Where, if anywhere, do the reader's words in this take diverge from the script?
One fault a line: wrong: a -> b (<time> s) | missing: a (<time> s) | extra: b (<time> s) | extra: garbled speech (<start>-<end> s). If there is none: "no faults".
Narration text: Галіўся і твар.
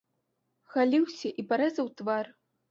extra: парэзаў (1.5 s)